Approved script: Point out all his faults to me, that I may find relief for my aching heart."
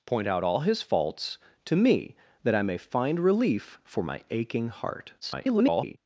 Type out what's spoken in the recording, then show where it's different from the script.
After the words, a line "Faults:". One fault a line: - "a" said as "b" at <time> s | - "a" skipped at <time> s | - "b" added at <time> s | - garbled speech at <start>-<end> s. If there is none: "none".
Point out all his faults to me, that I may find relief for my aching heart." [garbled]
Faults:
- garbled speech at 5.2-6.0 s